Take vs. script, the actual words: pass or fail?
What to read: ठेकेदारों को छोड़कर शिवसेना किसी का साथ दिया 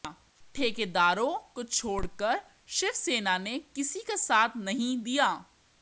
fail